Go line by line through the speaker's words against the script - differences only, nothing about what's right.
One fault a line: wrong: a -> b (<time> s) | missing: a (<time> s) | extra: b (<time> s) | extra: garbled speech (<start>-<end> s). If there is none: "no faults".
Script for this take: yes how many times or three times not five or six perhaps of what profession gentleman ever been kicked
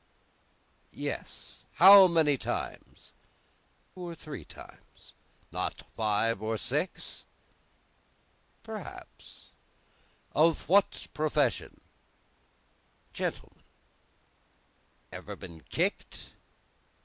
no faults